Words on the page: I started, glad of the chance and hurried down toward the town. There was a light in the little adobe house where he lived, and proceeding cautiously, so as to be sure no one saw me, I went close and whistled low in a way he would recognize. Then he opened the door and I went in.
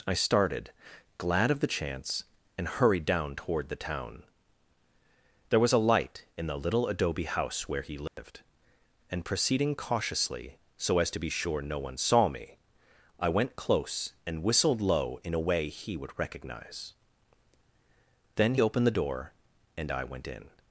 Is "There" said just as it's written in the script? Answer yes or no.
yes